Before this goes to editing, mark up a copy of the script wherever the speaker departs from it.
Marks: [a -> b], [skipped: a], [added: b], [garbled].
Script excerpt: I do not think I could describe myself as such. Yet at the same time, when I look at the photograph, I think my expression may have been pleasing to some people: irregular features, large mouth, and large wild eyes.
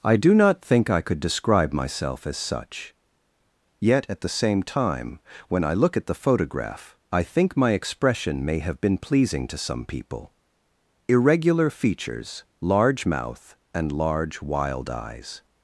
I do not think I could describe myself as such. Yet at the same time, when I look at the photograph, I think my expression may have been pleasing to some people: irregular features, large mouth, and large wild eyes.